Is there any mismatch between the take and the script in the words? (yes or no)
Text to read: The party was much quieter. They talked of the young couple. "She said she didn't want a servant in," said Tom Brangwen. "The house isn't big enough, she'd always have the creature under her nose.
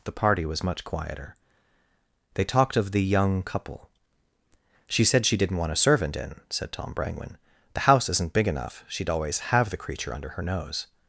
no